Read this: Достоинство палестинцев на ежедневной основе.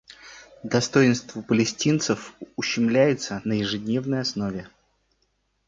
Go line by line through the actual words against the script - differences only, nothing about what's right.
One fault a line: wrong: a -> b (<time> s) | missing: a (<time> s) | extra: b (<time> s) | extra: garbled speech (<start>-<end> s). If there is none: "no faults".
extra: ущемляется (2.6 s)